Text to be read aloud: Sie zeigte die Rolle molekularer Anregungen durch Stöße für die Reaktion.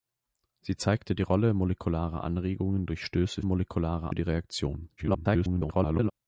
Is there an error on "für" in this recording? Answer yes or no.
yes